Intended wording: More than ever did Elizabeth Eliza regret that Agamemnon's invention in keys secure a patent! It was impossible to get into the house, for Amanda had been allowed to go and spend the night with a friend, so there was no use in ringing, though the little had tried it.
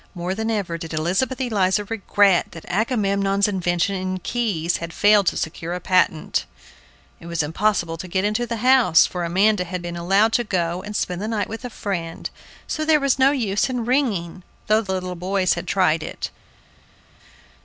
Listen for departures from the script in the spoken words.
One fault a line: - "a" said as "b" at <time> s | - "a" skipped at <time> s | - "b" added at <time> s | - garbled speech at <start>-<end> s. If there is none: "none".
- "had failed to" added at 4.8 s
- "boys" added at 15.1 s